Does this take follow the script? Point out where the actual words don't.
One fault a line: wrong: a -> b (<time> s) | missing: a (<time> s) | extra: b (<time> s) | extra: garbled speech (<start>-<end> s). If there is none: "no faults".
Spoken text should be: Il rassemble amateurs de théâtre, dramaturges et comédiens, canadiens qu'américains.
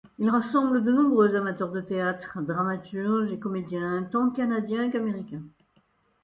extra: de nombreux (0.8 s)
extra: tant (4.1 s)